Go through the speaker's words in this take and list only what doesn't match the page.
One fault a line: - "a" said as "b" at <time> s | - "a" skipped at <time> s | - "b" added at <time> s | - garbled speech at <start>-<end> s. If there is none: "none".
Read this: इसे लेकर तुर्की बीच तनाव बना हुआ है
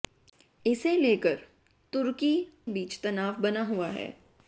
none